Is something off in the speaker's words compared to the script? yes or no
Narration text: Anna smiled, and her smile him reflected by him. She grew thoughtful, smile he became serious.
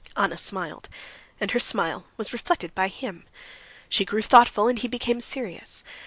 yes